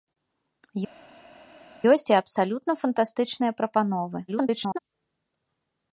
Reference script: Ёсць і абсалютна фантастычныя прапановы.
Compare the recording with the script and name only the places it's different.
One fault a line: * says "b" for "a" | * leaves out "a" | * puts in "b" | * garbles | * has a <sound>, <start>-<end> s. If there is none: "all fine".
* garbles